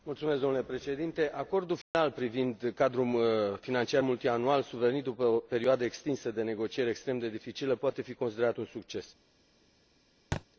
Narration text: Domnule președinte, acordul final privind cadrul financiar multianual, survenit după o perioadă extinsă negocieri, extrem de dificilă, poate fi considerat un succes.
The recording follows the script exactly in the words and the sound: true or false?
false